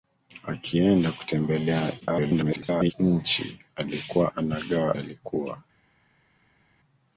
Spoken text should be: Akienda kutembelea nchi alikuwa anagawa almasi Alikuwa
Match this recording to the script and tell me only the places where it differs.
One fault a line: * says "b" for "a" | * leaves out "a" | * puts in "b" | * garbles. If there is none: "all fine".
* garbles
* leaves out "almasi"